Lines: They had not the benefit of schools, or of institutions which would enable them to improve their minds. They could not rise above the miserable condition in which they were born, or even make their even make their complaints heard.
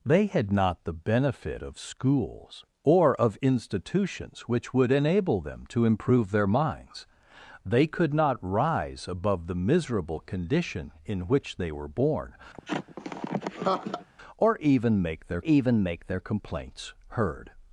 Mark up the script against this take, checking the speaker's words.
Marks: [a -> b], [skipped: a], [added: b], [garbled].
They had not the benefit of schools, or of institutions which would enable them to improve their minds. They could not rise above the miserable condition in which they were born, or even make their even make their complaints heard.